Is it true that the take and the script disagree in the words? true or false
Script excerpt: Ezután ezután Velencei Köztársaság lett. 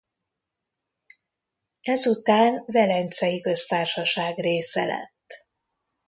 true